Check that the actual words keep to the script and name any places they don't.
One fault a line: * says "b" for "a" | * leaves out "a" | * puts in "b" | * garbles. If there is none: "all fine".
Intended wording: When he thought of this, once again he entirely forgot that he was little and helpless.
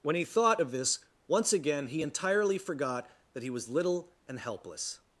all fine